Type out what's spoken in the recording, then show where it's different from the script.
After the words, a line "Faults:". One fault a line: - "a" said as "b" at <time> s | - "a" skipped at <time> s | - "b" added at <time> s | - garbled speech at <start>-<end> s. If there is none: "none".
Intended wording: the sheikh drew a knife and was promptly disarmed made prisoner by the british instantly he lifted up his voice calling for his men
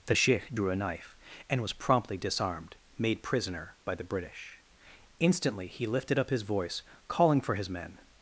the sheikh drew a knife and was promptly disarmed made prisoner by the british instantly he lifted up his voice calling for his men
Faults:
none